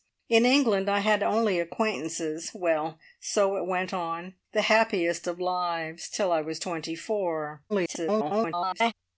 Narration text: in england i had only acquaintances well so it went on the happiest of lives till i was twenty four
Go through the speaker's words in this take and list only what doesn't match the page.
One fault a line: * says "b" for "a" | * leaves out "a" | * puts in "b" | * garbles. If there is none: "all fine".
* garbles